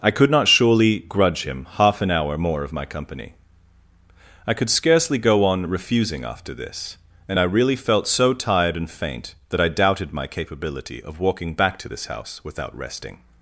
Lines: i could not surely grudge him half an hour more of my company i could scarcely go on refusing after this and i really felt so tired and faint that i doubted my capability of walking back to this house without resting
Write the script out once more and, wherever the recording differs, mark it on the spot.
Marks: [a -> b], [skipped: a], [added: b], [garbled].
i could not surely grudge him half an hour more of my company i could scarcely go on refusing after this and i really felt so tired and faint that i doubted my capability of walking back to this house without resting